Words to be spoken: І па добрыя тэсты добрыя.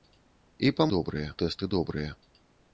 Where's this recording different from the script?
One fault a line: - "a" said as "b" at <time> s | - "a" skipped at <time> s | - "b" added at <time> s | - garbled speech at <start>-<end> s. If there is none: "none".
none